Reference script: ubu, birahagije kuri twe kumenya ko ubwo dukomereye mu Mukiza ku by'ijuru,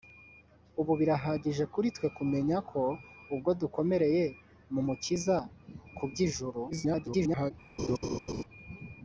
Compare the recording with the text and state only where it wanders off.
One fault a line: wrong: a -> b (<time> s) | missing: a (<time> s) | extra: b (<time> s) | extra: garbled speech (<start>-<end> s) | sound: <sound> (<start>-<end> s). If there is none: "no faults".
extra: garbled speech (6.7-7.5 s)
sound: laugh (7.8-8.4 s)